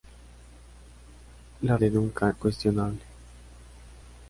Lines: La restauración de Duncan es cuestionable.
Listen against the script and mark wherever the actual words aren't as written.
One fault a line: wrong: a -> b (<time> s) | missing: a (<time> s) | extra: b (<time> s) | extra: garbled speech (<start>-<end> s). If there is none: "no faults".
missing: restauración (1.8 s)
missing: es (2.3 s)